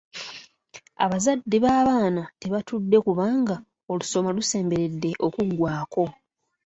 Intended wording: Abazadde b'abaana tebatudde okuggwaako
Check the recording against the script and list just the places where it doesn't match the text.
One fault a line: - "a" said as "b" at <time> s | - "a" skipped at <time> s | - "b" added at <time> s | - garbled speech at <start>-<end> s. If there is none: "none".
- "kubanga olusoma lusemberedde" added at 3.0 s